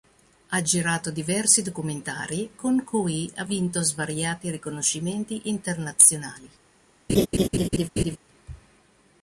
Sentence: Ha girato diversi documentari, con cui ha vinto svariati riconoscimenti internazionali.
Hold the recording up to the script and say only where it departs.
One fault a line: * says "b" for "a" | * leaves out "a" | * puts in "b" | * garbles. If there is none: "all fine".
all fine